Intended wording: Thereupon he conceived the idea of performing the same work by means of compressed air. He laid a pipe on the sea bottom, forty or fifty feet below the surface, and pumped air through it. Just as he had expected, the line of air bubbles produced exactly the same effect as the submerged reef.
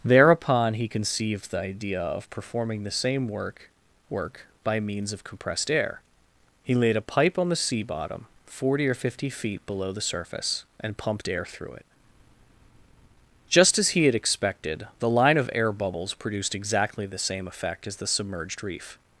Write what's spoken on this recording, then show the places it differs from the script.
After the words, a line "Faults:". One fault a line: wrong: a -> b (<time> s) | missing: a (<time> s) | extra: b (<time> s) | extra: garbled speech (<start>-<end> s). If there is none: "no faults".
Thereupon he conceived the idea of performing the same work work by means of compressed air. He laid a pipe on the sea bottom, forty or fifty feet below the surface, and pumped air through it. Just as he had expected, the line of air bubbles produced exactly the same effect as the submerged reef.
Faults:
extra: work (4.1 s)